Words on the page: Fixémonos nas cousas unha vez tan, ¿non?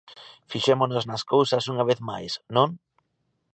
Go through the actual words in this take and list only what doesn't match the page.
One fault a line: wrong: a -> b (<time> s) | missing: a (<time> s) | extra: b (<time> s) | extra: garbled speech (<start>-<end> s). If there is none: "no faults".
wrong: tan -> máis (2.1 s)